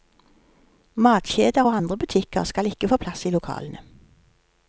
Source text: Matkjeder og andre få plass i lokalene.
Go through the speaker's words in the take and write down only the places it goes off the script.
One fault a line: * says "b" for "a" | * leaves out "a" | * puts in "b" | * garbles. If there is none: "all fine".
* puts in "butikker skal ikke"